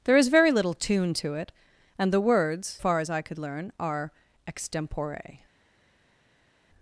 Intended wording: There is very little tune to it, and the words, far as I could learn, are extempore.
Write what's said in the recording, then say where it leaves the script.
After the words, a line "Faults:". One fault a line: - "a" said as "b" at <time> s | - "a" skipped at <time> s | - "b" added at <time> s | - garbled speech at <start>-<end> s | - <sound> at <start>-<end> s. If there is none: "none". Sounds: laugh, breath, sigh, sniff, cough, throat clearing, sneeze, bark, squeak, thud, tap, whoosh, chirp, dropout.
There is very little tune to it, and the words, far as I could learn, are extempore.
Faults:
none